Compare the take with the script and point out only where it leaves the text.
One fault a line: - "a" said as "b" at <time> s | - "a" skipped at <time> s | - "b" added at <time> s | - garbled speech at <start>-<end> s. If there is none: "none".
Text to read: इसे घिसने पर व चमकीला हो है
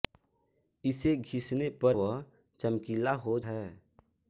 none